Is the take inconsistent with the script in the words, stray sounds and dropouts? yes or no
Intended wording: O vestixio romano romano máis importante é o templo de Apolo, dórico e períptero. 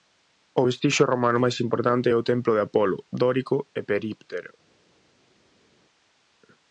yes